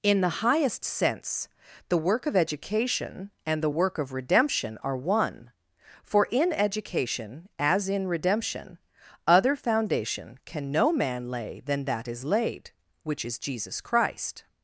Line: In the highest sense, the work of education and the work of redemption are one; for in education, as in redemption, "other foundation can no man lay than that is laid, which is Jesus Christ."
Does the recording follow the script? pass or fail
pass